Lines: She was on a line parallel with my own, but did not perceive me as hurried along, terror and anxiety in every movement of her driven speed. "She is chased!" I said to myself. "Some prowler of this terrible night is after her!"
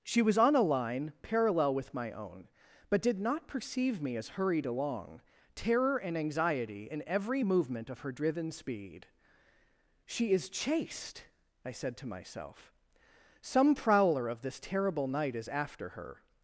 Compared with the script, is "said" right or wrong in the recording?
right